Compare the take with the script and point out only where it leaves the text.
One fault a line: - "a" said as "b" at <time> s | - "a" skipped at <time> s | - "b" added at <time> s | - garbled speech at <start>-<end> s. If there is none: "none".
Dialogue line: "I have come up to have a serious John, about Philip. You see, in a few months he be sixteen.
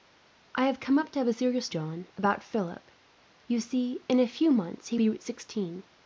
none